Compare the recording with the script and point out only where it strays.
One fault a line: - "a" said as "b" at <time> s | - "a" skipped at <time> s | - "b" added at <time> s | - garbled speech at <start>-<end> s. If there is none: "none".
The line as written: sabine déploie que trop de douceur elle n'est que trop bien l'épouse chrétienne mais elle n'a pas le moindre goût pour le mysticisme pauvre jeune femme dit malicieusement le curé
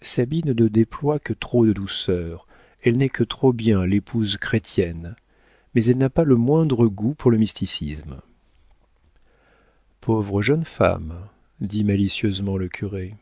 - "ne" added at 0.5 s